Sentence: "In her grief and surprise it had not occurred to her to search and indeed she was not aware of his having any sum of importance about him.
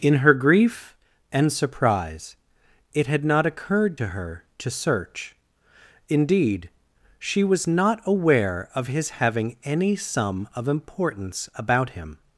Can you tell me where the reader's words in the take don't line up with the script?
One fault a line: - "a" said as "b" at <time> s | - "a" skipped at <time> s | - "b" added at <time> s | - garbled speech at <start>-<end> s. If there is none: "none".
- "and" skipped at 5.4 s